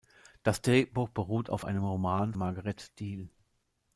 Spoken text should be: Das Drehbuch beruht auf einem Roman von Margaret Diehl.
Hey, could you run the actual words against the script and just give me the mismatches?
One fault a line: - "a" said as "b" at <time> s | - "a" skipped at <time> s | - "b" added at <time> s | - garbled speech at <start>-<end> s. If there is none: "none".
- "von" skipped at 2.3 s